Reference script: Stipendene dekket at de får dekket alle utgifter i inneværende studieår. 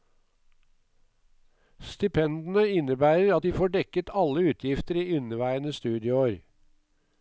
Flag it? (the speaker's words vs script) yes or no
yes